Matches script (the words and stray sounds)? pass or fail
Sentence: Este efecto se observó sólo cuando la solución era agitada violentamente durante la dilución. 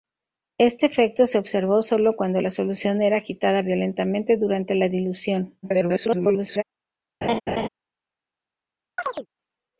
fail